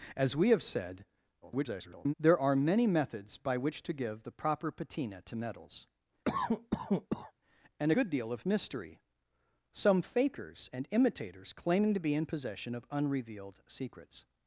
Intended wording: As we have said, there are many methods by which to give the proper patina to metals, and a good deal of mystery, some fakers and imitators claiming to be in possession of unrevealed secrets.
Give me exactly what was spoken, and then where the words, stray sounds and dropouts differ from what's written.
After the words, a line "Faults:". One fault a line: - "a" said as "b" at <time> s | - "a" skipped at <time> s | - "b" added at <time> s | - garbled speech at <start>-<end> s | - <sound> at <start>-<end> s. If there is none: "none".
As we have said, [garbled] there are many methods by which to give the proper patina to metals, and good deal of mystery, some fakers and imitators claiming to be in possession of unrevealed secrets.
Faults:
- garbled speech at 1.4-2.1 s
- cough at 6.2-7.3 s
- "a" skipped at 7.9 s